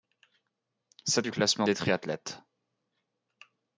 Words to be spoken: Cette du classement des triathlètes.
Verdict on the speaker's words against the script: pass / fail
pass